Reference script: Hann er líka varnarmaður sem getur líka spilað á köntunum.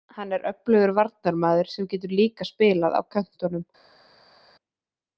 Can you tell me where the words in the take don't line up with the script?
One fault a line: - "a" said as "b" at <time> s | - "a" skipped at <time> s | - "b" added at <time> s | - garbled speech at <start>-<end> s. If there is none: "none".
- "líka" said as "öflugur" at 0.5 s